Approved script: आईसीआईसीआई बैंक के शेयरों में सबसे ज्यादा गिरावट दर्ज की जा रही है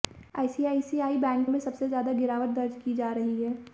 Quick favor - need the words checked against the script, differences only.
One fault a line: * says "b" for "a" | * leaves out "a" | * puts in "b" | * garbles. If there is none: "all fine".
* leaves out "के शेयरों"